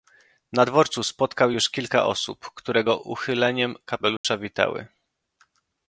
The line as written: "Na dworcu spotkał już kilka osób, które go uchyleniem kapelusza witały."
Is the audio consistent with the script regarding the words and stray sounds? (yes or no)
no